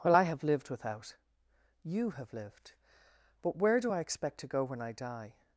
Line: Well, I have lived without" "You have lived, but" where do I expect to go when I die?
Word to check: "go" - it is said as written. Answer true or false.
true